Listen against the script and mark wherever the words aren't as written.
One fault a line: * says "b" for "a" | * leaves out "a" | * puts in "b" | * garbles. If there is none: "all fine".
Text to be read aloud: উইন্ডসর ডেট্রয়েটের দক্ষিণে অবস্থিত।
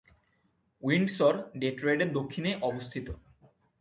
all fine